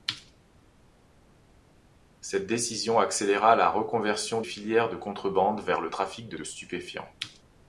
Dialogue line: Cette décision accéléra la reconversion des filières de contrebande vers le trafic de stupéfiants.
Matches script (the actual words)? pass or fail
fail